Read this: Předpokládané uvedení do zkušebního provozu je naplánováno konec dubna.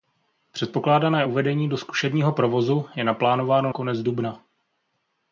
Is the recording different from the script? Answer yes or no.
no